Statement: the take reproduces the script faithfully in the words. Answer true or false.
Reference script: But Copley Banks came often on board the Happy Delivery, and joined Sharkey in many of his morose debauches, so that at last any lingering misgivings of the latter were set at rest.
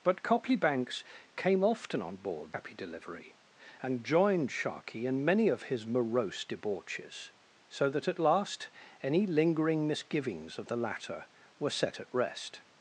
false